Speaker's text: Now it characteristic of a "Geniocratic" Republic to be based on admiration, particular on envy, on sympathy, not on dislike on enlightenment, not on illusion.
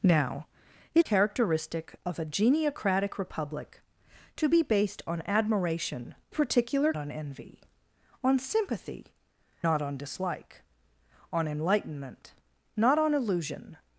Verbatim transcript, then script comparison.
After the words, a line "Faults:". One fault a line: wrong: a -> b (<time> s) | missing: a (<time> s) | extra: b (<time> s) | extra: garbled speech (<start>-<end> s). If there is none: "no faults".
Now it characteristic of a "Geniocratic" Republic to be based on admiration, particular on envy, on sympathy, not on dislike on enlightenment, not on illusion.
Faults:
no faults